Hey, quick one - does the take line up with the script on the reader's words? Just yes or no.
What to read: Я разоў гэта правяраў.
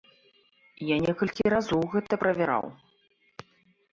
no